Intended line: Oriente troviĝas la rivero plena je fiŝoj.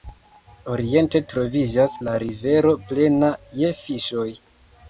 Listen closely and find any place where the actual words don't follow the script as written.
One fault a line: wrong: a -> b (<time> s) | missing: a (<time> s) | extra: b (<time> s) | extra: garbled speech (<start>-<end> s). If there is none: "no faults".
no faults